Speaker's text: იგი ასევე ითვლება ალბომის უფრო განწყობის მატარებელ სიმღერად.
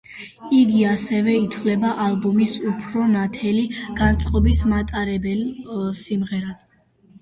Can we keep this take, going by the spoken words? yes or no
no